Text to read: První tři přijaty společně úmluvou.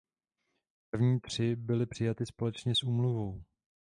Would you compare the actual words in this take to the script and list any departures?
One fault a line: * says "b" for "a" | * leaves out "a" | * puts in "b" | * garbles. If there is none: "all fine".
* puts in "byly"
* puts in "s"